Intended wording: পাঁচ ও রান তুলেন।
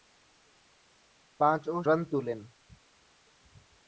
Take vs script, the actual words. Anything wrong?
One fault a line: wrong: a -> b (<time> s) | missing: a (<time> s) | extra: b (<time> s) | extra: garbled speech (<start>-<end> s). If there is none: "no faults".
no faults